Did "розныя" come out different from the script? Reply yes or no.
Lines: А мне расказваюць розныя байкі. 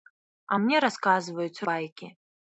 yes